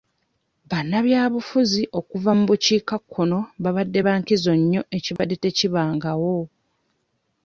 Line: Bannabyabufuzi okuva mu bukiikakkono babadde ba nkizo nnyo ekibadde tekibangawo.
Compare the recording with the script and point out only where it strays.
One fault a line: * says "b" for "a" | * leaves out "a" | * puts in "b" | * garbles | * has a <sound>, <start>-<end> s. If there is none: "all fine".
* has a dropout, 5.2-5.2 s